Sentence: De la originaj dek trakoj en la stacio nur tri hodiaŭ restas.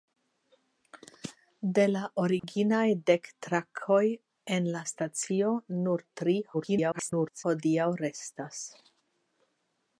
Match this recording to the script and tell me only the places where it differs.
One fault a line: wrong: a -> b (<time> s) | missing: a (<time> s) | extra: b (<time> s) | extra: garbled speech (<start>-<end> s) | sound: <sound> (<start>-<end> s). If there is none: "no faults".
sound: dropout (2.4-2.4 s)
extra: garbled speech (6.5-7.4 s)